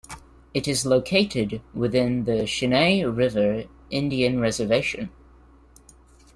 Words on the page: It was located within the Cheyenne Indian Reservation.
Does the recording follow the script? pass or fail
fail